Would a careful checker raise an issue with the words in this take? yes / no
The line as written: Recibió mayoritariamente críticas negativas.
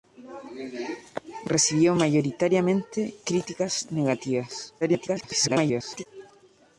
yes